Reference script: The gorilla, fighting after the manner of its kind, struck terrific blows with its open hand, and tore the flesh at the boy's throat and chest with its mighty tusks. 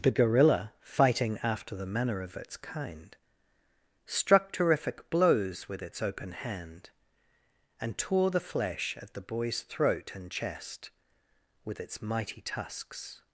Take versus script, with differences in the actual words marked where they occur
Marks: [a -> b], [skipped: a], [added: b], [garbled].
The gorilla, fighting after the manner of its kind, struck terrific blows with its open hand, and tore the flesh at the boy's throat and chest with its mighty tusks.